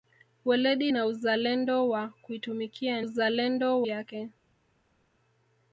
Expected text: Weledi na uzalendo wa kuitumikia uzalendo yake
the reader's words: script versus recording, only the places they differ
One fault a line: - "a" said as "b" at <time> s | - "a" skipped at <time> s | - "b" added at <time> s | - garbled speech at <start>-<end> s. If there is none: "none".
none